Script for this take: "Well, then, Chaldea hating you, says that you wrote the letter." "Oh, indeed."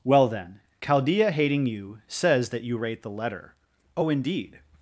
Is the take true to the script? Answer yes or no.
no